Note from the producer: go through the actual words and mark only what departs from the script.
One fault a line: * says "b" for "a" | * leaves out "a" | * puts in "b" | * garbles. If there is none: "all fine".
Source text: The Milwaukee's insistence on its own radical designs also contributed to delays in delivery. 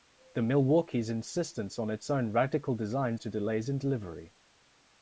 * leaves out "also contributed"